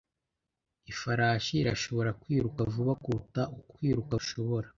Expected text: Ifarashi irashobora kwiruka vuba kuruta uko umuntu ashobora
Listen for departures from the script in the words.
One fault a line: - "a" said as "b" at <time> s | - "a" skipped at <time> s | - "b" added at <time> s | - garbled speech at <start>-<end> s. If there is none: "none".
- "umuntu" said as "kwiruka" at 3.7 s